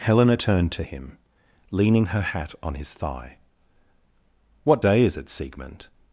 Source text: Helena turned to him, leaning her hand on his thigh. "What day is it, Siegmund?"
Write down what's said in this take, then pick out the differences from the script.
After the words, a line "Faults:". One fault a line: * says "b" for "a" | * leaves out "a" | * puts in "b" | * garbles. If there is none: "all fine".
Helena turned to him, leaning her hat on his thigh. "What day is it, Siegmund?"
Faults:
* says "hat" for "hand"